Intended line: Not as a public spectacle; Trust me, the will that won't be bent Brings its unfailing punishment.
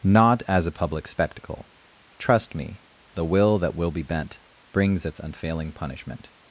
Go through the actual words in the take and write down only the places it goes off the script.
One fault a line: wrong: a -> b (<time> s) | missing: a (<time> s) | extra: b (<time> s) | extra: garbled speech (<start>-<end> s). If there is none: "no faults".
wrong: won't -> will (3.8 s)